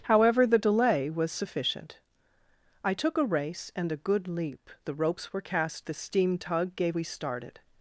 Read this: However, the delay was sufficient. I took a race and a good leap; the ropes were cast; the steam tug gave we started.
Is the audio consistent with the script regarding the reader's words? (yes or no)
yes